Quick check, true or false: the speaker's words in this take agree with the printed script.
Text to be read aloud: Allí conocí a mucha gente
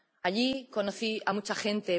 true